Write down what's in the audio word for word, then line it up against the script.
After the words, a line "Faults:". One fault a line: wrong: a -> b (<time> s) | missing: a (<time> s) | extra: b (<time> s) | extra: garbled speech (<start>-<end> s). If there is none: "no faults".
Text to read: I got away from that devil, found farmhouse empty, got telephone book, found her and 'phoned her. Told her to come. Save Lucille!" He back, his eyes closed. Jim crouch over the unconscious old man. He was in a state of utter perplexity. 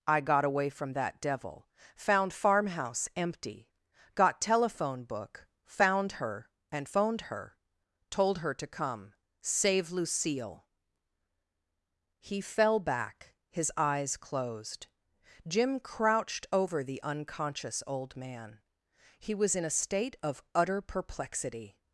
I got away from that devil, found farmhouse empty, got telephone book, found her and 'phoned her. Told her to come. Save Lucille!" He fell back, his eyes closed. Jim crouched over the unconscious old man. He was in a state of utter perplexity.
Faults:
extra: fell (12.4 s)
wrong: crouch -> crouched (15.8 s)